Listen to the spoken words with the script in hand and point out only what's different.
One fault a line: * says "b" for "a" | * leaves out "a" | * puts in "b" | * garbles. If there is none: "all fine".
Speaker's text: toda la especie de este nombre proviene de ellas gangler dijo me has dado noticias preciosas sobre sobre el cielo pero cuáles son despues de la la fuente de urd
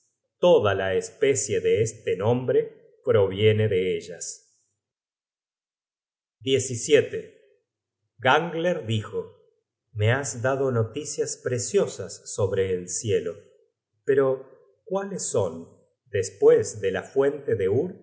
* leaves out "sobre"
* leaves out "la"